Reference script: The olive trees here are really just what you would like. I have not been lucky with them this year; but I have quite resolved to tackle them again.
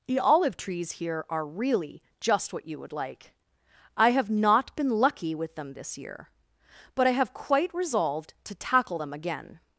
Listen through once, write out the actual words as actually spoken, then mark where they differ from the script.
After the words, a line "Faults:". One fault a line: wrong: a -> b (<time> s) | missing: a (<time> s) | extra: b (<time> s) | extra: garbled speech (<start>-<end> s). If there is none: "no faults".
The olive trees here are really just what you would like. I have not been lucky with them this year; but I have quite resolved to tackle them again.
Faults:
no faults